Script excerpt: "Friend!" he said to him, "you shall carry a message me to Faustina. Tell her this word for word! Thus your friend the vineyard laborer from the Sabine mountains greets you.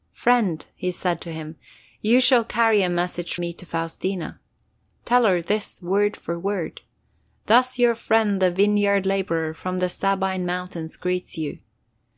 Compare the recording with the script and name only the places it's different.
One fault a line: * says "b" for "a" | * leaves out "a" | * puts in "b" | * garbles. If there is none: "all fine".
all fine